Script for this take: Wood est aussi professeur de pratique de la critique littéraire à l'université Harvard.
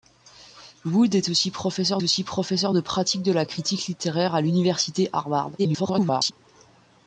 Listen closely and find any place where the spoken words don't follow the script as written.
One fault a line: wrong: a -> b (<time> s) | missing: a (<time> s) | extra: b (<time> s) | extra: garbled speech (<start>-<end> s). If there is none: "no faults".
extra: aussi professeur (2.0 s)
extra: garbled speech (5.6-6.3 s)